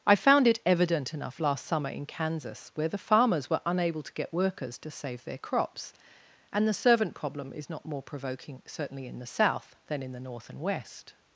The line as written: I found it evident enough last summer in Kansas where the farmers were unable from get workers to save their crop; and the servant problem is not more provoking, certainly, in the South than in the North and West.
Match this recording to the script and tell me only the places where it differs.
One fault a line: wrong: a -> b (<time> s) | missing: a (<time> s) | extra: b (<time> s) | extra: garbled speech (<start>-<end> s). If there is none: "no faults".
wrong: from -> to (4.0 s)
wrong: crop -> crops (5.4 s)